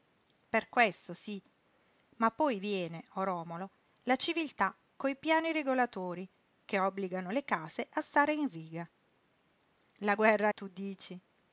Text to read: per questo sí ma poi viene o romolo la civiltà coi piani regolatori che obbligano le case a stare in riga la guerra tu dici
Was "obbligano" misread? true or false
false